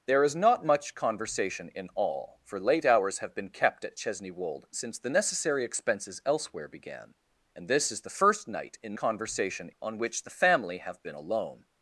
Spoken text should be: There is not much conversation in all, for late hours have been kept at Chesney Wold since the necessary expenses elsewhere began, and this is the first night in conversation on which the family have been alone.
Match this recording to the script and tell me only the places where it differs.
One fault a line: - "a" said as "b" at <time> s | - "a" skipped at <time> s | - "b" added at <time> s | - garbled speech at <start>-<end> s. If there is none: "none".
none